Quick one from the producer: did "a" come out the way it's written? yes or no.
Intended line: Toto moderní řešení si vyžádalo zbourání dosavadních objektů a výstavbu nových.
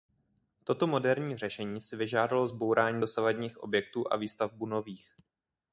yes